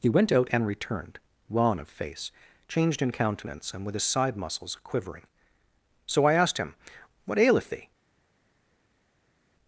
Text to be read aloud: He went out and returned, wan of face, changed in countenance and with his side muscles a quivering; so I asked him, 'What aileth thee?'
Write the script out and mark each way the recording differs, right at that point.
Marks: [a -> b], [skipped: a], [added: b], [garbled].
He went out and returned, wan of face, changed in countenance and with his side muscles [skipped: a] quivering; so I asked him, 'What aileth thee?'